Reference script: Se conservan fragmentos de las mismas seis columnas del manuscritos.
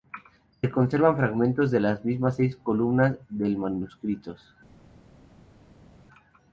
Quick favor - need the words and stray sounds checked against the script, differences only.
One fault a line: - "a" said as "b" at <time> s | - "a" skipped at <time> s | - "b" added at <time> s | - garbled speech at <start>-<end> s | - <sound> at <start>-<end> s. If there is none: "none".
none